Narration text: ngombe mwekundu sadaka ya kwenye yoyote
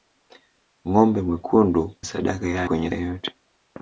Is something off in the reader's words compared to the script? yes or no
no